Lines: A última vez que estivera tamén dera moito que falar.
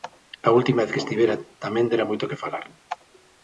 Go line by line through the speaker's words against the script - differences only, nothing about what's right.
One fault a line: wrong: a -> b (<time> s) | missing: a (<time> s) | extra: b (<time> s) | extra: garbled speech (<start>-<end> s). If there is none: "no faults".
no faults